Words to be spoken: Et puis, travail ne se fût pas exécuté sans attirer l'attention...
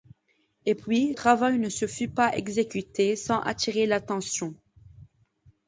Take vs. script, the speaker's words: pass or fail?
pass